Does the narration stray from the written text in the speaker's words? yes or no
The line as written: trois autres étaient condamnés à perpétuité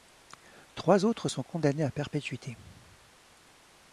yes